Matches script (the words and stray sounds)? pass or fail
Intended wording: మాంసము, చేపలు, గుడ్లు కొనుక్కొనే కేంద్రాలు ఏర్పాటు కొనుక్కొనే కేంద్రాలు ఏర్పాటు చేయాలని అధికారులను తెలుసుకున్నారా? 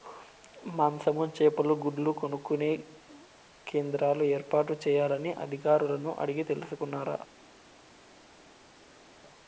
fail